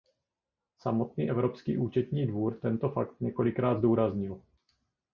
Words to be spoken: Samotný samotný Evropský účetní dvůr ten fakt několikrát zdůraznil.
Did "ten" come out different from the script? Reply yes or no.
yes